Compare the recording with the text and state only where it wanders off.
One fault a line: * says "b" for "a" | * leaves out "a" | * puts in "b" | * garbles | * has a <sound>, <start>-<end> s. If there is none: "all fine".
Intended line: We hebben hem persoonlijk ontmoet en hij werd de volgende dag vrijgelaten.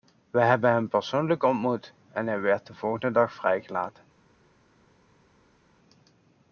all fine